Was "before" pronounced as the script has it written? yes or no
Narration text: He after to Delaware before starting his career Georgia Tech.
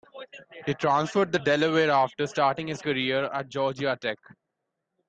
no